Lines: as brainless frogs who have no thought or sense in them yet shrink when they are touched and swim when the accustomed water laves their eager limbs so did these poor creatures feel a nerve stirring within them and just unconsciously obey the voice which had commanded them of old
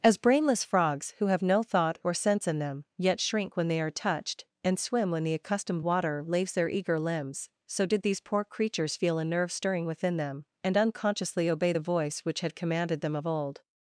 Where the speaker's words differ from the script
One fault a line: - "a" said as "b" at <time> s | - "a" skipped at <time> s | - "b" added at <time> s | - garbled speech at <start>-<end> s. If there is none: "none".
- "just" skipped at 10.8 s